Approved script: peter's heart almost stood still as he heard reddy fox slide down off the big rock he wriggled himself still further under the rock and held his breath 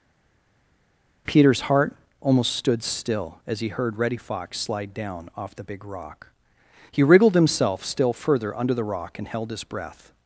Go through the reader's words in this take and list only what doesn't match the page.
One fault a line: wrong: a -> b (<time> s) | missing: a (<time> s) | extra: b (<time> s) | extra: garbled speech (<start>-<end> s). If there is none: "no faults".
no faults